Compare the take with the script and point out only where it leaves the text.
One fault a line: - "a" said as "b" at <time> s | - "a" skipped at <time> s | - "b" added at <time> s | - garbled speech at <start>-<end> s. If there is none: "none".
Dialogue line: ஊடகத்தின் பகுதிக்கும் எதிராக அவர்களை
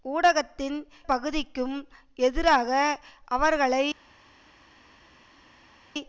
none